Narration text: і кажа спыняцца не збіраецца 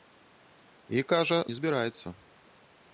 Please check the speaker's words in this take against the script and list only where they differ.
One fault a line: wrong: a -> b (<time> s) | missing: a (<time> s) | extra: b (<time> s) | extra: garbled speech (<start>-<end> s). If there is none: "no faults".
missing: спыняцца (1.4 s)